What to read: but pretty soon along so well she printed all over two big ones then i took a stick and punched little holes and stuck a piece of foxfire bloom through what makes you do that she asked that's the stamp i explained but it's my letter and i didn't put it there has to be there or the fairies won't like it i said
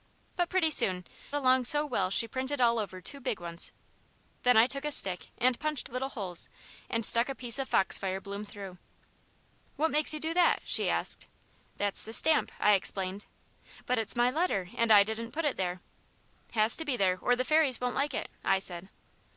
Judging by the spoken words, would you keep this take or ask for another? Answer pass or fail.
pass